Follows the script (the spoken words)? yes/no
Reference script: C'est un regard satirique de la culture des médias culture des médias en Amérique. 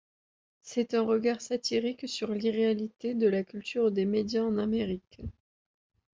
no